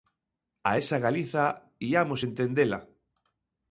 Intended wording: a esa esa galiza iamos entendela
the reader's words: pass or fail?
fail